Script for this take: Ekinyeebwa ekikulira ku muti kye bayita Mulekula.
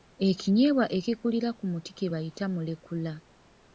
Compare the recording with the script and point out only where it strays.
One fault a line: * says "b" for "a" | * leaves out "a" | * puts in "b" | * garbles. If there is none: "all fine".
all fine